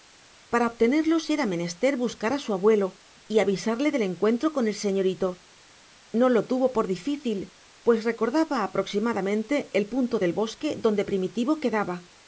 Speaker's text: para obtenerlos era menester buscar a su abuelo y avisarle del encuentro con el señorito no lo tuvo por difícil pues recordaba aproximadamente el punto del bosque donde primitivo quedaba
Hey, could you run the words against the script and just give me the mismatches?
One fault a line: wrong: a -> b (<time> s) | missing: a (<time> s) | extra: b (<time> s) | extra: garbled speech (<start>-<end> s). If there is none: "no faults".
no faults